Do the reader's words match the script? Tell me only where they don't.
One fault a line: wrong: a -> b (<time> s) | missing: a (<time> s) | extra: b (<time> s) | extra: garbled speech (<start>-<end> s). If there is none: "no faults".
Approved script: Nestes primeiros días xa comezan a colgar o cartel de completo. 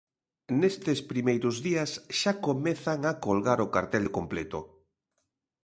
no faults